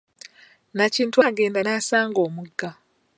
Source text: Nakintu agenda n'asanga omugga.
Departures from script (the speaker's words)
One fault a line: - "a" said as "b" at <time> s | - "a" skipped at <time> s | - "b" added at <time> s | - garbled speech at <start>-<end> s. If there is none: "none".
none